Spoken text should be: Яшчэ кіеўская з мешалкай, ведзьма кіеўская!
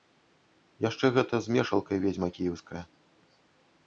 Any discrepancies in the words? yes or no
yes